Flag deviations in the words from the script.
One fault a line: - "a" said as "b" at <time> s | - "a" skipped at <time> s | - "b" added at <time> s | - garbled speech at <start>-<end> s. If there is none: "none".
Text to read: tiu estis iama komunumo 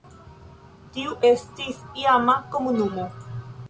none